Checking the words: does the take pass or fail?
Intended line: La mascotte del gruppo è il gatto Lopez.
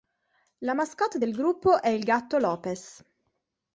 pass